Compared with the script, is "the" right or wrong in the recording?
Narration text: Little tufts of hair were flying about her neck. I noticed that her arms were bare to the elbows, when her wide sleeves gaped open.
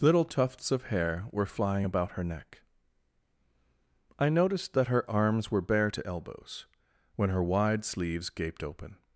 wrong